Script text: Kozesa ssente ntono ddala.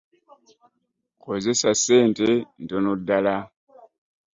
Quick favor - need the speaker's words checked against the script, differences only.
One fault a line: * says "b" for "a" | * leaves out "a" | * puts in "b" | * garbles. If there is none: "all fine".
all fine